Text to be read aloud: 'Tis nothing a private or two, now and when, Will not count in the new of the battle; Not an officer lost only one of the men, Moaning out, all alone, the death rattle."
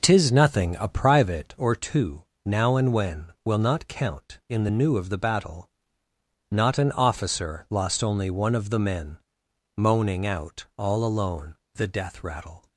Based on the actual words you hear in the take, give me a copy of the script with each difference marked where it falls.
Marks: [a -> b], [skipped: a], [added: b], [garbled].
'Tis nothing a private or two, now and when, Will not count in the new of the battle; Not an officer lost only one of the men, Moaning out, all alone, the death rattle."